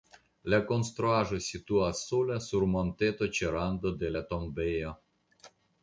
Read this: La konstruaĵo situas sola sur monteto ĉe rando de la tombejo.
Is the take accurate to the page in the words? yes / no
yes